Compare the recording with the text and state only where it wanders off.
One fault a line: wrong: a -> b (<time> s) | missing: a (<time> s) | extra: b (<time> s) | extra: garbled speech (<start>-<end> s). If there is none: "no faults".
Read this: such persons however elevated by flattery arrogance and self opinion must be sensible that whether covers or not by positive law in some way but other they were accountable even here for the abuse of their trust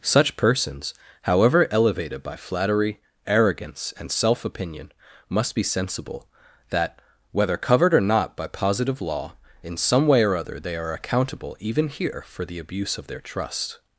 wrong: covers -> covered (7.6 s)
wrong: but -> or (10.2 s)
wrong: were -> are (10.8 s)